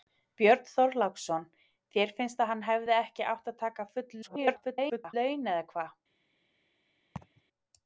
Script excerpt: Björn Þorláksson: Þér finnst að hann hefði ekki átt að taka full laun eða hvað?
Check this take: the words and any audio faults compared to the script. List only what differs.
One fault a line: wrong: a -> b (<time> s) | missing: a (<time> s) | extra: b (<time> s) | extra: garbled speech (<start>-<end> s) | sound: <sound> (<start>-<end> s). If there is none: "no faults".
extra: garbled speech (4.2-5.1 s)
sound: laugh (7.2-7.4 s)